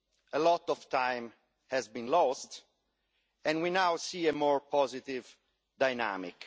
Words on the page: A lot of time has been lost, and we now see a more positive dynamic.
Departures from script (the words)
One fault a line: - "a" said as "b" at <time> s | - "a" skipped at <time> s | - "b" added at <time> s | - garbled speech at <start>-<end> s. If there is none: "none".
none